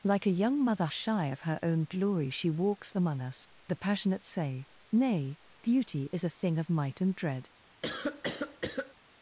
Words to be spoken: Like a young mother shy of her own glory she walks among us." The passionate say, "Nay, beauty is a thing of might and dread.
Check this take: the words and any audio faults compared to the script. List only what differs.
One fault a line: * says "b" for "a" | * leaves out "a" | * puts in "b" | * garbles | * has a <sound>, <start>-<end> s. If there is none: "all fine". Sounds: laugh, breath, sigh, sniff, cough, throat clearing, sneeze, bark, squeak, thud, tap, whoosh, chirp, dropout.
* has a cough, 7.8-8.9 s